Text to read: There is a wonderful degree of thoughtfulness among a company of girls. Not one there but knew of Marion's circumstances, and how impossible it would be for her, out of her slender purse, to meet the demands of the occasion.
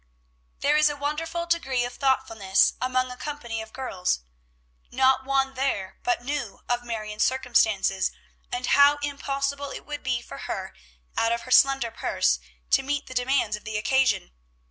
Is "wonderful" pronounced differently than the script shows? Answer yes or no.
no